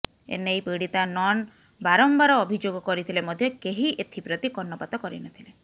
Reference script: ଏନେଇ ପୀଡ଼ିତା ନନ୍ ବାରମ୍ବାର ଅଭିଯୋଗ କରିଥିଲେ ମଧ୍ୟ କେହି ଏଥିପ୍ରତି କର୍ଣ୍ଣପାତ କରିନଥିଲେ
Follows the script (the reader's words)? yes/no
yes